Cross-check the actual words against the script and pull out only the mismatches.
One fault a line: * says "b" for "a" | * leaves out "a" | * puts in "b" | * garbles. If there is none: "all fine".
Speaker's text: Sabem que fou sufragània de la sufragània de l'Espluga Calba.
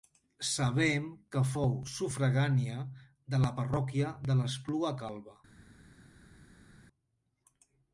* says "parròquia" for "sufragània"